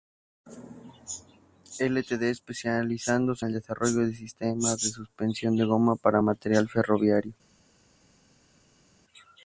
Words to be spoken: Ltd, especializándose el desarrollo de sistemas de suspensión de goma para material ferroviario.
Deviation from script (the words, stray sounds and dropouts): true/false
false